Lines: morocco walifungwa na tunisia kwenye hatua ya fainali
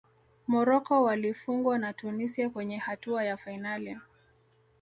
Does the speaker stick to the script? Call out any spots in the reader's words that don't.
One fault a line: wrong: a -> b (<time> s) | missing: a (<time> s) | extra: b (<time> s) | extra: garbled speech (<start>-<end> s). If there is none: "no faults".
no faults